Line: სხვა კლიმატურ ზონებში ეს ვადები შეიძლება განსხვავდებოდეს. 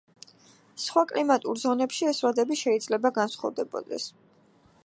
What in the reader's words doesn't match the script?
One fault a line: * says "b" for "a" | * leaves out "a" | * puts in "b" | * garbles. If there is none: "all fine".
all fine